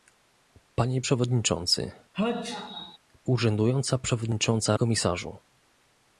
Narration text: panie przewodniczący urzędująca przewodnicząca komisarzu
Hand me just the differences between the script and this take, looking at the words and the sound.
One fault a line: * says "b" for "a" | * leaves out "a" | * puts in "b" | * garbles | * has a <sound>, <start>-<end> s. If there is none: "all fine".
* has a sneeze, 2.1-3.0 s